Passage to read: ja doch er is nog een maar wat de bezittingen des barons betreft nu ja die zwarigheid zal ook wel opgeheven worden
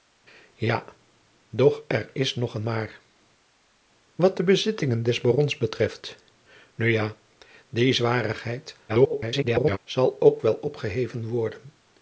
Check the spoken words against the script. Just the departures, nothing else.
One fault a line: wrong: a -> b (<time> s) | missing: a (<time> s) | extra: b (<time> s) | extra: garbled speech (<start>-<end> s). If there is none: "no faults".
extra: garbled speech (8.9-9.8 s)